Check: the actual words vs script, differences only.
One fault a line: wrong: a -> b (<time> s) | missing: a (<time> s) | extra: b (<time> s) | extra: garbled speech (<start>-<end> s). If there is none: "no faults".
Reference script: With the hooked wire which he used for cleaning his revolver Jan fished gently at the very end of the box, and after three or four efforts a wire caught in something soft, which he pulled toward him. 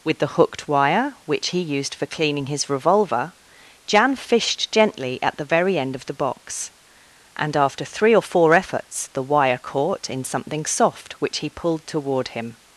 wrong: a -> the (9.1 s)